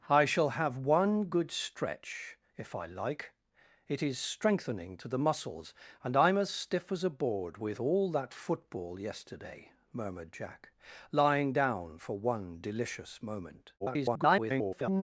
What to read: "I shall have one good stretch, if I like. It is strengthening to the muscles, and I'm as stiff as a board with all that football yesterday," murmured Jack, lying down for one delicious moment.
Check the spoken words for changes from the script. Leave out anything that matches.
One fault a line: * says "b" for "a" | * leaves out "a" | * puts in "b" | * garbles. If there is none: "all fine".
* garbles